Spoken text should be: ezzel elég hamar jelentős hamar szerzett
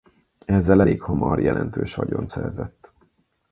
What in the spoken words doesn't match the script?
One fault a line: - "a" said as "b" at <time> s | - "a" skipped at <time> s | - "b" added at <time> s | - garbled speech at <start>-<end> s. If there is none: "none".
- "hamar" said as "vagyont" at 1.9 s